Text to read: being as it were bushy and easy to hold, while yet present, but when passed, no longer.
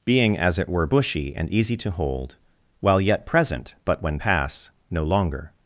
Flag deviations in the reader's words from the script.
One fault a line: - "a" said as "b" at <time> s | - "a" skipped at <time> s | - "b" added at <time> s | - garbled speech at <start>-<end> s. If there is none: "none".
- "passed" said as "pass" at 4.2 s